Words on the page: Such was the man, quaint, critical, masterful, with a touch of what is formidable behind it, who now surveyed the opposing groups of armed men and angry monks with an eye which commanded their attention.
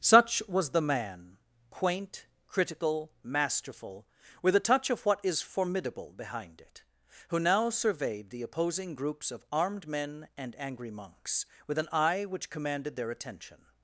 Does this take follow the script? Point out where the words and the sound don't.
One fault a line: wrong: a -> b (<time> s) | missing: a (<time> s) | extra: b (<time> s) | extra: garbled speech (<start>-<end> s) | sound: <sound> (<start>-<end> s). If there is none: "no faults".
no faults